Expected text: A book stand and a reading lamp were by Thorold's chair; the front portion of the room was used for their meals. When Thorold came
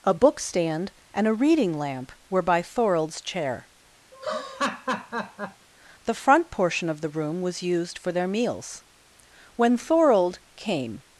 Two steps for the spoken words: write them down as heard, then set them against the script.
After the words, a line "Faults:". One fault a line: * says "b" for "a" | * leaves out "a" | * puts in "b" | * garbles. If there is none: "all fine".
A book stand and a reading lamp were by Thorold's chair; the front portion of the room was used for their meals. When Thorold came
Faults:
all fine